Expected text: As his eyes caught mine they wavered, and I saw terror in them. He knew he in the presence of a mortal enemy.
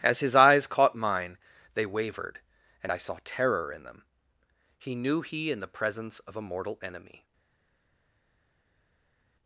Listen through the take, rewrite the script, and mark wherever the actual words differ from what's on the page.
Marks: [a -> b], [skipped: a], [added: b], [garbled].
As his eyes caught mine they wavered, and I saw terror in them. He knew he in the presence of a mortal enemy.